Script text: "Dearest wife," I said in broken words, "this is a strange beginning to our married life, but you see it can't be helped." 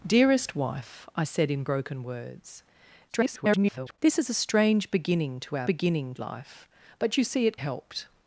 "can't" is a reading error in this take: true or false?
true